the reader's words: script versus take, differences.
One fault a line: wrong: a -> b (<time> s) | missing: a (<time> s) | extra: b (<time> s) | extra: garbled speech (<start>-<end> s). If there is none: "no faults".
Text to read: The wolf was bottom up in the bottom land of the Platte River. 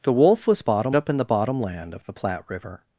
no faults